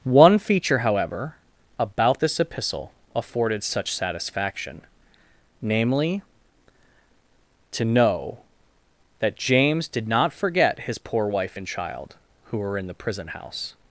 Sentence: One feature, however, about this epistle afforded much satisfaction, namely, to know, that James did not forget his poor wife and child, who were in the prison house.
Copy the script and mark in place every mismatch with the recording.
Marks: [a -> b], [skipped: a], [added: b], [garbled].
One feature, however, about this epistle afforded [much -> such] satisfaction, namely, to know, that James did not forget his poor wife and child, who were in the prison house.